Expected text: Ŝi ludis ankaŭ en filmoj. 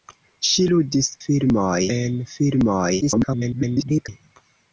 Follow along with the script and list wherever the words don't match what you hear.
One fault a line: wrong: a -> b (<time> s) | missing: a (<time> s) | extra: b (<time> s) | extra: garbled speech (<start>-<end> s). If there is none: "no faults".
wrong: ankaŭ -> filmoj (1.3 s)
extra: garbled speech (3.0-4.1 s)